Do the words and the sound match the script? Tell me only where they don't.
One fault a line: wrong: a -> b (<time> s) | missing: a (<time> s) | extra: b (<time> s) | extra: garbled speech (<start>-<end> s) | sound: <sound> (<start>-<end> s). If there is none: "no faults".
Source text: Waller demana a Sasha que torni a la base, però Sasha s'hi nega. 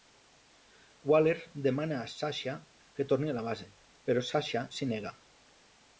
no faults